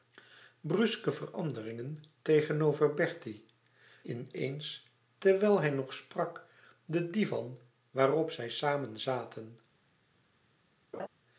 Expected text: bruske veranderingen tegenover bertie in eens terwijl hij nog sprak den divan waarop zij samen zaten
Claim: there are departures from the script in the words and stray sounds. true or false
true